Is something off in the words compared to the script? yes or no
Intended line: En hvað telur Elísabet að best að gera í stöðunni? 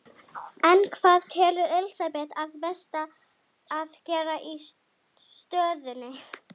no